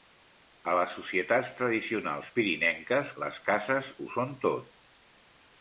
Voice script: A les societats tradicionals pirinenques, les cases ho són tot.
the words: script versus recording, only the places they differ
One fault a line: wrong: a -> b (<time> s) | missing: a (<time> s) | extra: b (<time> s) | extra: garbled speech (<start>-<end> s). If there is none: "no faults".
no faults